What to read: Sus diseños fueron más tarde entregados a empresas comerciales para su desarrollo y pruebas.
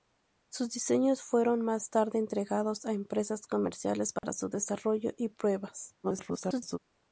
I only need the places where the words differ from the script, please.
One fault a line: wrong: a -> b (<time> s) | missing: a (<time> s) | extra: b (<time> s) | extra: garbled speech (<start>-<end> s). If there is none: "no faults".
extra: garbled speech (6.0-6.8 s)